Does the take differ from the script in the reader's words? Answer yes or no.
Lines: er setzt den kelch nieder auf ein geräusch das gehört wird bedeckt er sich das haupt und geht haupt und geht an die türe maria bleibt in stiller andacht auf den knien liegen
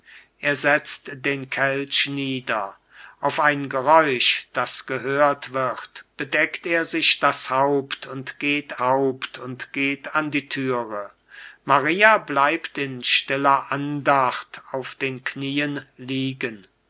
no